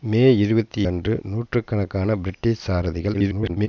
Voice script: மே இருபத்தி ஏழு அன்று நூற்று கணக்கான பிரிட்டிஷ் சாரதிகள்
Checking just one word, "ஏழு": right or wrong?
wrong